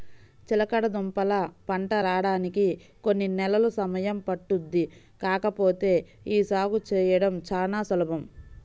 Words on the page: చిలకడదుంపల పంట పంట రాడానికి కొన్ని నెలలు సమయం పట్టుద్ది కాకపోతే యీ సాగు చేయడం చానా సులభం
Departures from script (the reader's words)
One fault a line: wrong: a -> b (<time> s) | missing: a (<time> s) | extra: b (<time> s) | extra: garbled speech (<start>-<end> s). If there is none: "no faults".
missing: పంట (1.9 s)